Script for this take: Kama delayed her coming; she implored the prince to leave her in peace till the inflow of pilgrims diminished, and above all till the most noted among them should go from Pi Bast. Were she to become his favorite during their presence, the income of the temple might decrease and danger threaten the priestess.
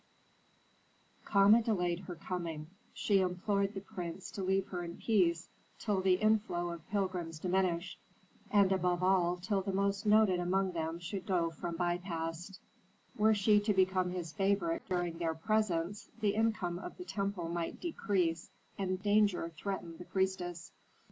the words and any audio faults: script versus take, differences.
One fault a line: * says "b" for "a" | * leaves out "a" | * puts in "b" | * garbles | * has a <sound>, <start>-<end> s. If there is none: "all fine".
all fine